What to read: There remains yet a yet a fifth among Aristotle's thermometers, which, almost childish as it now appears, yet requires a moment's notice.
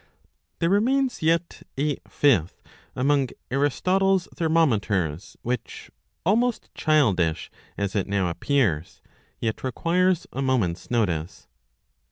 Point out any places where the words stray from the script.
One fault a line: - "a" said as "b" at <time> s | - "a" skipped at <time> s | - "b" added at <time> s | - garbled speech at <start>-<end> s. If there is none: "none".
- "yet a" skipped at 2.0 s